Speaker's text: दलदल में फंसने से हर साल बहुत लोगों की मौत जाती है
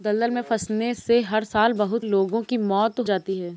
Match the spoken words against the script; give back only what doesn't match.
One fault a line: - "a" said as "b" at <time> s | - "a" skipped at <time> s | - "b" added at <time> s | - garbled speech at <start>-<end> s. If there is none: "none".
none